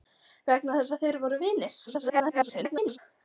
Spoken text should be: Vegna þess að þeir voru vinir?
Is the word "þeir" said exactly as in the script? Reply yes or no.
yes